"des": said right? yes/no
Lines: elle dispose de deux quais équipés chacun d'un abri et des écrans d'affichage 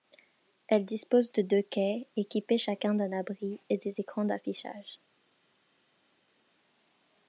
yes